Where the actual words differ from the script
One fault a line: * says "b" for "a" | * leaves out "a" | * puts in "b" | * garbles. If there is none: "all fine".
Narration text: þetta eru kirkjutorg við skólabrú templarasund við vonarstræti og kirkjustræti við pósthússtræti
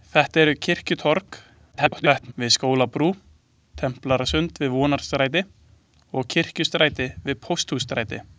* garbles